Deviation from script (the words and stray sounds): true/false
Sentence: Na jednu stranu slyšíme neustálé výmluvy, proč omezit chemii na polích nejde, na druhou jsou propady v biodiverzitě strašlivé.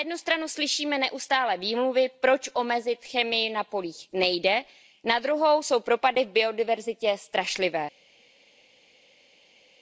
false